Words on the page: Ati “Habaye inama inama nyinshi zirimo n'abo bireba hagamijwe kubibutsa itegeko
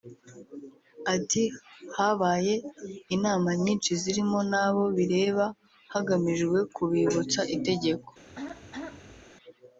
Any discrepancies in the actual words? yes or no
yes